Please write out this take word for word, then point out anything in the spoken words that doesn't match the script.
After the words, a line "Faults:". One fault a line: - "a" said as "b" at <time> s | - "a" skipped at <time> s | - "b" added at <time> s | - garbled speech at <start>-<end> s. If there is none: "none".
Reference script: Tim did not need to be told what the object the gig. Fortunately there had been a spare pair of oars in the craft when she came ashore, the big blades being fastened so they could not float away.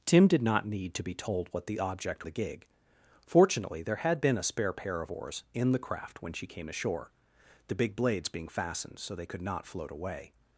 Tim did not need to be told what the object the gig. Fortunately there had been a spare pair of oars in the craft when she came ashore, the big blades being fastened so they could not float away.
Faults:
none